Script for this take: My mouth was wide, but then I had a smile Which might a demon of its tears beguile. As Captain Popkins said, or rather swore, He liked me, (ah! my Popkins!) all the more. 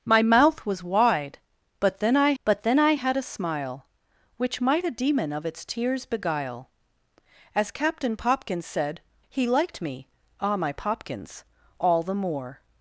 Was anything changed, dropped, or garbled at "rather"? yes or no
yes